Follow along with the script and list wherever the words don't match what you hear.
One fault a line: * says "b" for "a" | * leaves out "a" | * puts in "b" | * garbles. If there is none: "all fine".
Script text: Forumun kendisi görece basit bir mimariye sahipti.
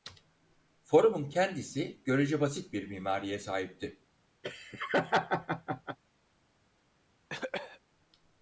all fine